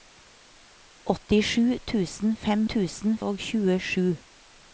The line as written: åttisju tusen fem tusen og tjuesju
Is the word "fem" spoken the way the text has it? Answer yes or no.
yes